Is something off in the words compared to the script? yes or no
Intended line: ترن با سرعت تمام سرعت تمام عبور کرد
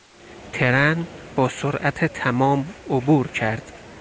yes